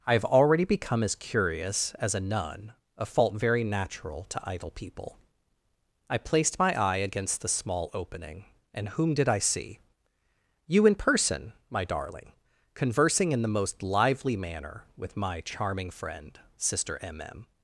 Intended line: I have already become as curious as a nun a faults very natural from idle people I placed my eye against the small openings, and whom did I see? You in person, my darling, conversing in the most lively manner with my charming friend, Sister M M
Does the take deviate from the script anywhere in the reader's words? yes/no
yes